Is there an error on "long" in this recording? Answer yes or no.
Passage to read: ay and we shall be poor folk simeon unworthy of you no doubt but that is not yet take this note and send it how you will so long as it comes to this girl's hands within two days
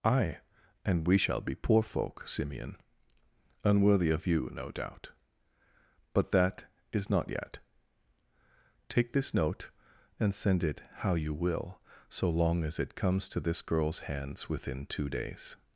no